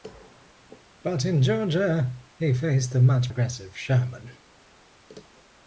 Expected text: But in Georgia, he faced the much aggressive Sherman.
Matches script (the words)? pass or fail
pass